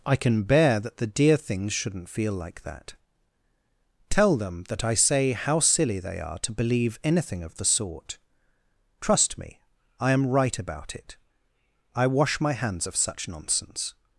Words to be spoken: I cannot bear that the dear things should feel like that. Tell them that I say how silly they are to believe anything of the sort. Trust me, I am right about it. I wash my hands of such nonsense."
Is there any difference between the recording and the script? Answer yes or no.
yes